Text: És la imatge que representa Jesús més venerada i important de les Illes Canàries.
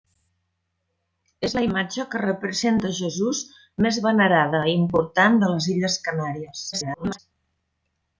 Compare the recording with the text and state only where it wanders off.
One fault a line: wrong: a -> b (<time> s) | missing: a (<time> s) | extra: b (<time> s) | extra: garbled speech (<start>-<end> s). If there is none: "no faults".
extra: garbled speech (6.7-7.2 s)